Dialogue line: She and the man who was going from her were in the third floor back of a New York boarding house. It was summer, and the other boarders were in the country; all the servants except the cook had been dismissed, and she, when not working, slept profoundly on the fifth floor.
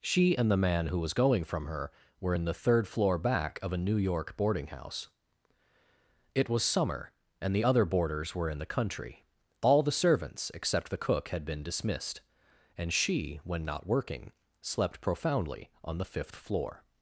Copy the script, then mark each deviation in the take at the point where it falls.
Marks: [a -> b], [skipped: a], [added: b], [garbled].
She and the man who was going from her were in the third floor back of a New York boarding house. It was summer, and the other boarders were in the country; all the servants except the cook had been dismissed, and she, when not working, slept profoundly on the fifth floor.